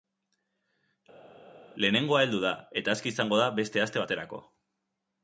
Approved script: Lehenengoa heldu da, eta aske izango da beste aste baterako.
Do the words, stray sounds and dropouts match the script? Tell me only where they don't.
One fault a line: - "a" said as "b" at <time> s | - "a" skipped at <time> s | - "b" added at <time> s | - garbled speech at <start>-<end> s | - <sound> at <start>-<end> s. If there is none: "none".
none